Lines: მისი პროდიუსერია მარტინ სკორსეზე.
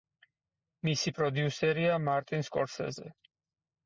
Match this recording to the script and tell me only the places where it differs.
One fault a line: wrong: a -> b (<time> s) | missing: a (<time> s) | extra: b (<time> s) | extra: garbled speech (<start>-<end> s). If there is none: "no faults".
no faults